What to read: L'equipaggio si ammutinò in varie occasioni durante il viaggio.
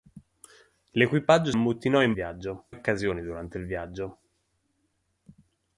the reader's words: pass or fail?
fail